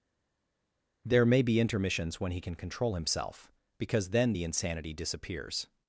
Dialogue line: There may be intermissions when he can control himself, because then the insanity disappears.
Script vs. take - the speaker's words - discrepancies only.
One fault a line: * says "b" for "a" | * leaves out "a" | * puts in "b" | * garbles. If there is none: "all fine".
all fine